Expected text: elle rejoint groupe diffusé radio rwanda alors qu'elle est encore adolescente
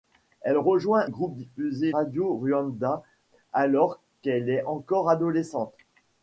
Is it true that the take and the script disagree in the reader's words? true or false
false